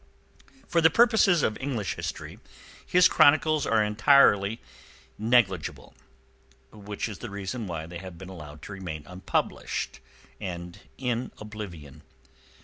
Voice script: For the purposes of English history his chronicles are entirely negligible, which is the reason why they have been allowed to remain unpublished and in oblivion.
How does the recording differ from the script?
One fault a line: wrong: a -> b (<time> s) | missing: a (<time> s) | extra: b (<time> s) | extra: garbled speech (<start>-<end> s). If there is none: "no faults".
no faults